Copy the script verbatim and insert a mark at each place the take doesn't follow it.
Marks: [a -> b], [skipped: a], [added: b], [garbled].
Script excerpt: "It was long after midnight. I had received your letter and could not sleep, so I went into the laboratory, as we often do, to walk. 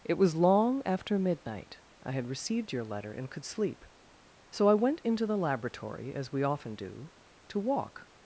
"It was long after midnight. I had received your letter and could [skipped: not] sleep, so I went into the laboratory, as we often do, to walk.